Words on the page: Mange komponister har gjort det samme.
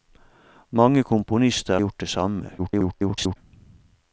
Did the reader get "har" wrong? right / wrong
wrong